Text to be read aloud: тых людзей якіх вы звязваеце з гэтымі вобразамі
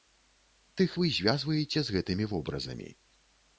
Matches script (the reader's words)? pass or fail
fail